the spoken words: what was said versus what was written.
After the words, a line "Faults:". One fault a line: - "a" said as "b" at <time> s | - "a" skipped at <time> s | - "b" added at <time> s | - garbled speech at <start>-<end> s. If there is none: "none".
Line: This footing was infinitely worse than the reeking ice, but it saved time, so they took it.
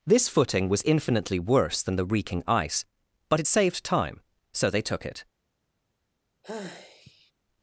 This footing was infinitely worse than the reeking ice, but it saved time, so they took it.
Faults:
none